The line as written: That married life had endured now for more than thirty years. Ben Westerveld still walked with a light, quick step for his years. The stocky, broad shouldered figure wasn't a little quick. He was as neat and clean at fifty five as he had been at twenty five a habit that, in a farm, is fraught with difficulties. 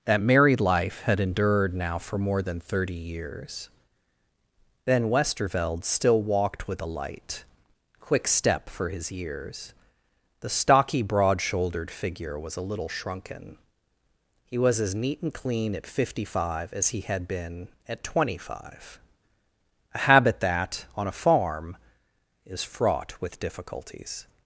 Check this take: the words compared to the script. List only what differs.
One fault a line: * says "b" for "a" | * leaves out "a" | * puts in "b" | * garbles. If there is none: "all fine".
* says "was" for "wasn't"
* says "shrunken" for "quick"
* says "on" for "in"